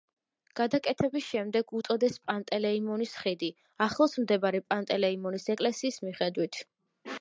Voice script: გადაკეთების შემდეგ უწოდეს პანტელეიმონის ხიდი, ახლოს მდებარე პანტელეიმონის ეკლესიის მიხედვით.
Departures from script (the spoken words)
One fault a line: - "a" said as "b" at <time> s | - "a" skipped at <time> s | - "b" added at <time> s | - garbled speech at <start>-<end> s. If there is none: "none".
none